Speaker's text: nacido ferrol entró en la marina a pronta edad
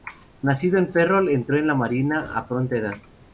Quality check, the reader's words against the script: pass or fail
fail